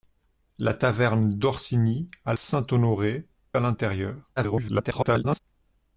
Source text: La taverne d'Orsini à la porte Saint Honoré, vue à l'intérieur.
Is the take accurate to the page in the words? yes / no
no